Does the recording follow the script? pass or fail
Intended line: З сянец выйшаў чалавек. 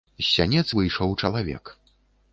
pass